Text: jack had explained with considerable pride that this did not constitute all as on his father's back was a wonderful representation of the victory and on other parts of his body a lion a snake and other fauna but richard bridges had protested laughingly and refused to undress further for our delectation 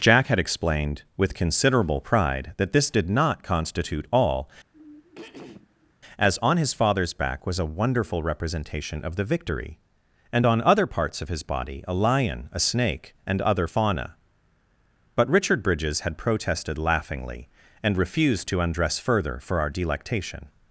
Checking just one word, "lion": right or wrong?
right